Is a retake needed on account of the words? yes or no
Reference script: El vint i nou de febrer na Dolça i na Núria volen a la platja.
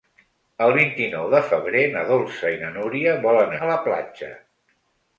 no